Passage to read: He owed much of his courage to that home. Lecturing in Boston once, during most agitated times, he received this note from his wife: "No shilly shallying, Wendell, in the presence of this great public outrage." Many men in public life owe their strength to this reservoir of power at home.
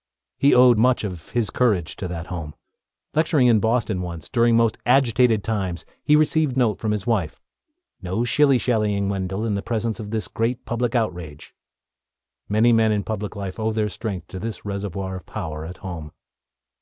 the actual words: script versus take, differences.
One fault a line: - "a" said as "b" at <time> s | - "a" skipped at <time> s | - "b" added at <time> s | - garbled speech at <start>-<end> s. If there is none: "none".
- "this" skipped at 6.6 s